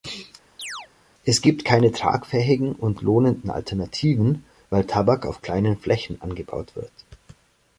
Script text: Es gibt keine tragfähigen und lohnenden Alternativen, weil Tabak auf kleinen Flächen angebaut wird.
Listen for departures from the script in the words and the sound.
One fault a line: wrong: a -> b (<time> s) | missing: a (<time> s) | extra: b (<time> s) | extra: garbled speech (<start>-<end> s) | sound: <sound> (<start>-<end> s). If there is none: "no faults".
sound: chirp (0.6-0.9 s)